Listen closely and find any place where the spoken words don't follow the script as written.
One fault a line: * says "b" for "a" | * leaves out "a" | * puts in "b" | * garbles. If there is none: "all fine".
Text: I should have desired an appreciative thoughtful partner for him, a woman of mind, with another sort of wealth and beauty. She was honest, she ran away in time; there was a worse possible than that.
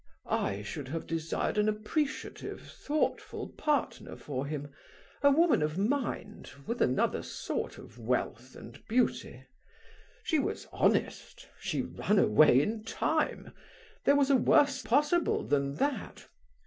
all fine